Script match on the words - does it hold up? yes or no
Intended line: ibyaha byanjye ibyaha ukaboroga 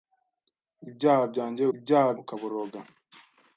yes